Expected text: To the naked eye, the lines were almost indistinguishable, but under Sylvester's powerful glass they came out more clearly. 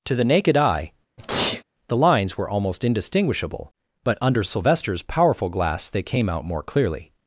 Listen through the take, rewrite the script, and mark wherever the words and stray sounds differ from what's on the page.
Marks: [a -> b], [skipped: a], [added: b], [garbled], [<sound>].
To the naked eye, [sneeze] the lines were almost indistinguishable, but under Sylvester's powerful glass they came out more clearly.